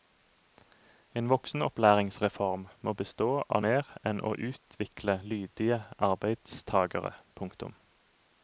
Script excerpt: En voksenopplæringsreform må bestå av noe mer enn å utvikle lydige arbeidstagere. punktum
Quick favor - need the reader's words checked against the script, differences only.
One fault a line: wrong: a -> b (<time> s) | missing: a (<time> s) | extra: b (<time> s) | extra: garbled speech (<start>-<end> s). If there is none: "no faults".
missing: noe (3.6 s)